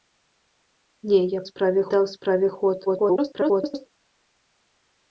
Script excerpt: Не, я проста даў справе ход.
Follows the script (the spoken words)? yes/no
no